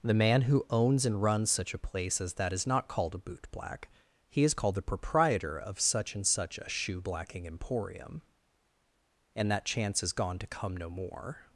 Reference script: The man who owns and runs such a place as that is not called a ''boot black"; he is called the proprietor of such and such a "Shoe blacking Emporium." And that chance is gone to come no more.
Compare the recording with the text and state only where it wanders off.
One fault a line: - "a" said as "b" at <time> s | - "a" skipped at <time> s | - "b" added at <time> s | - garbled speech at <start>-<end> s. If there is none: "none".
none